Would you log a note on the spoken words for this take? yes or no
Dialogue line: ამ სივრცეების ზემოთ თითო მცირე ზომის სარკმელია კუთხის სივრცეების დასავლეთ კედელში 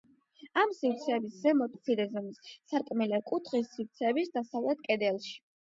yes